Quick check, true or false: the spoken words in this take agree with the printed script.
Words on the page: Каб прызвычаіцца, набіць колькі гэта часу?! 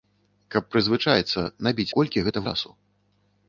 true